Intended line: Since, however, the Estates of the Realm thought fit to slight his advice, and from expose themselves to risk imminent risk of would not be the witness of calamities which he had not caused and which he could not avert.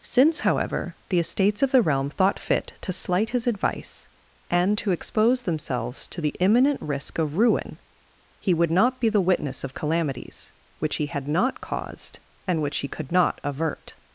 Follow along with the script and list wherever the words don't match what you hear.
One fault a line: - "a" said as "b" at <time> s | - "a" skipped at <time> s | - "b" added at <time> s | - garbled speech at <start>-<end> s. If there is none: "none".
- "from" said as "to" at 4.8 s
- "risk" said as "the" at 6.2 s
- "ruin he" added at 7.4 s